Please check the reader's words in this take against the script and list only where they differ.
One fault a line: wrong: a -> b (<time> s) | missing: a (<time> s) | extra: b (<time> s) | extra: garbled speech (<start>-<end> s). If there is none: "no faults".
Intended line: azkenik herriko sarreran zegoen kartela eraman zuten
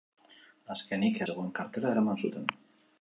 missing: herriko sarreran (1.2 s)